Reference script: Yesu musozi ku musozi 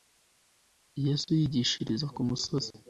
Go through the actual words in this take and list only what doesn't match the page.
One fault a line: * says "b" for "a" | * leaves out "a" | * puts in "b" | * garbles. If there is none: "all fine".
* says "yigishiriza" for "musozi"